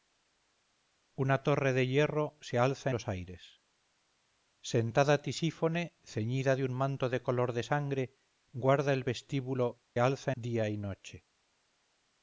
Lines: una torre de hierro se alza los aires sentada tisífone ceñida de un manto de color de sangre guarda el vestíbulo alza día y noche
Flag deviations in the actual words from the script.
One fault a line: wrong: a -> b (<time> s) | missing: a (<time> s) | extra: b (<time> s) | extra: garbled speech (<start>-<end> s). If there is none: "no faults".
no faults